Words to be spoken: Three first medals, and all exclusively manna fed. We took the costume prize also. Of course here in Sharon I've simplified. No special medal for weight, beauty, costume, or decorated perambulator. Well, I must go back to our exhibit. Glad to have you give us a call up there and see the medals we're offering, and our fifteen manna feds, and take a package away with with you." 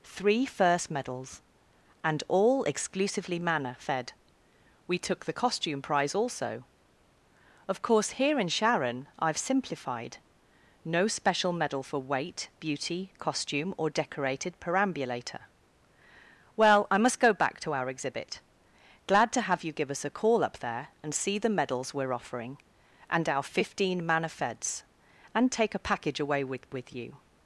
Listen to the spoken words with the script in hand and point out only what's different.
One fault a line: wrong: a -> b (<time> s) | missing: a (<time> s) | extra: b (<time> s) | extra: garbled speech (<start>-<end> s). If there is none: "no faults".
no faults